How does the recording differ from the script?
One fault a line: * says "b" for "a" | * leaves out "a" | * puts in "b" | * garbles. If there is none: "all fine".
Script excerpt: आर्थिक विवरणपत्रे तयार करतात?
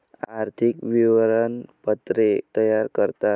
all fine